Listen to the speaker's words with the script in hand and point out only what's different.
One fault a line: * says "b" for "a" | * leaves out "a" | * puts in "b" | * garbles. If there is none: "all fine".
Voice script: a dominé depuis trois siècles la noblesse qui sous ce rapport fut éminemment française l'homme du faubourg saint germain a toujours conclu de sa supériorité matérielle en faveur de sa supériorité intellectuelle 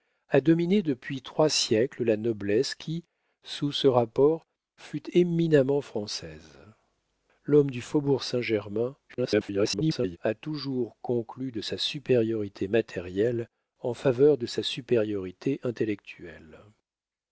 * garbles